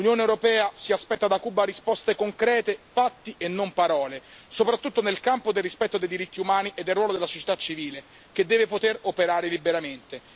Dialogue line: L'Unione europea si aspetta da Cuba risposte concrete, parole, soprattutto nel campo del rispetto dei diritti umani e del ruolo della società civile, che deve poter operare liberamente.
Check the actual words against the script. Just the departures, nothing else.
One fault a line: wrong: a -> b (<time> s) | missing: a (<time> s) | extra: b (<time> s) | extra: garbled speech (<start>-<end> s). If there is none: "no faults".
extra: fatti e non (2.9 s)